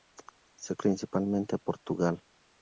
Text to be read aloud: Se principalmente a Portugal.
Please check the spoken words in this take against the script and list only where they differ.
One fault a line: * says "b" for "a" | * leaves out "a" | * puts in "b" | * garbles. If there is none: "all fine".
all fine